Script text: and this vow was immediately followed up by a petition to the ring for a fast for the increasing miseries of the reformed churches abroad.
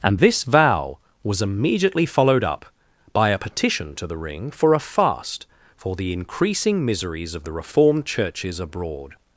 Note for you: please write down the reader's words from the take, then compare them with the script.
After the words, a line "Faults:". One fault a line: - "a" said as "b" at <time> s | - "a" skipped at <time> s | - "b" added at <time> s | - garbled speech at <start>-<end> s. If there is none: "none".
and this vow was immediately followed up by a petition to the ring for a fast for the increasing miseries of the reformed churches abroad.
Faults:
none